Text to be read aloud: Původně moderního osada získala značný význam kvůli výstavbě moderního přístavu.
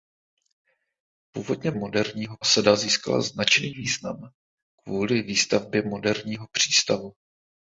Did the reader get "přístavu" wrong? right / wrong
right